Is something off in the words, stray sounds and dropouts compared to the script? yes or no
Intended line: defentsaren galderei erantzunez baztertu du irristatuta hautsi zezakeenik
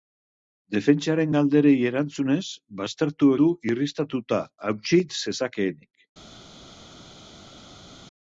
no